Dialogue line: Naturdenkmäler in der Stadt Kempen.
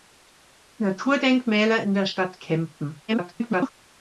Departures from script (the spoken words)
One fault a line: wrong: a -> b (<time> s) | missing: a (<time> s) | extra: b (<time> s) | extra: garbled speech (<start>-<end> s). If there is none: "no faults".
extra: garbled speech (3.1-3.7 s)